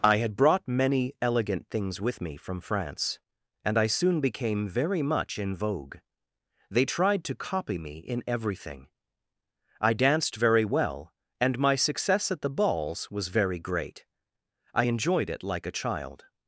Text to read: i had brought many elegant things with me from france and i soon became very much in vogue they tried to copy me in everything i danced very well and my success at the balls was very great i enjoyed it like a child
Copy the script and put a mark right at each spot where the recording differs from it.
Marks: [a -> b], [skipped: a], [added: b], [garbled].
i had brought many elegant things with me from france and i soon became very much in vogue they tried to copy me in everything i danced very well and my success at the balls was very great i enjoyed it like a child